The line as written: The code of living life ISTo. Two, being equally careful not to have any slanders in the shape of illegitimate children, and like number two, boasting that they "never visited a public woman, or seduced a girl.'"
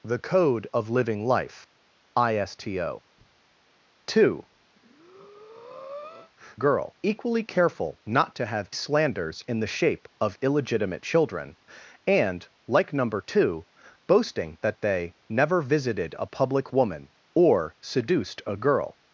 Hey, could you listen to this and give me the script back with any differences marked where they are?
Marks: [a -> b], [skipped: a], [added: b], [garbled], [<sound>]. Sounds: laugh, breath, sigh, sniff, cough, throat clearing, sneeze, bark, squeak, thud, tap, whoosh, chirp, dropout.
The code of living life ISTo. Two, [breath] [being -> girl] equally careful not to have [skipped: any] slanders in the shape of illegitimate children, and like number two, boasting that they "never visited a public woman, or seduced a girl.'"